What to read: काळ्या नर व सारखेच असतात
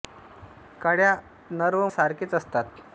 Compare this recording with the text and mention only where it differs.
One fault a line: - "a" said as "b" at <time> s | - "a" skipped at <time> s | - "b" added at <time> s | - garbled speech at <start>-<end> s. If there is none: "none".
none